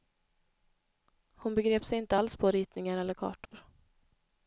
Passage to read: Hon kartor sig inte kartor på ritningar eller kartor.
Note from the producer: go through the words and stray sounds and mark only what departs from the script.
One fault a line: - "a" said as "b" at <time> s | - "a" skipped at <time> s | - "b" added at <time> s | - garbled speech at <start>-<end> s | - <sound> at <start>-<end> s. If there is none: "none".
- "kartor" said as "begrep" at 1.6 s
- "kartor" said as "alls" at 2.1 s
- dropout at 3.5-3.5 s